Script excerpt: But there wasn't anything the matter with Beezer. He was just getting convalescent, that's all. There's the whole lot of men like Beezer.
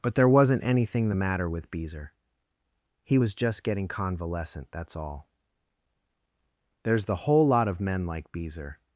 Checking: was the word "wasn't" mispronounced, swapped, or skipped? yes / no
no